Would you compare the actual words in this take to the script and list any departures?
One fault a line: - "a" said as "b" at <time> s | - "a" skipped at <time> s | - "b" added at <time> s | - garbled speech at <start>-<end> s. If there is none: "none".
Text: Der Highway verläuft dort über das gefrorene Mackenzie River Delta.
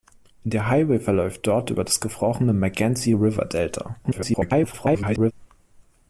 - garbled speech at 4.0-5.3 s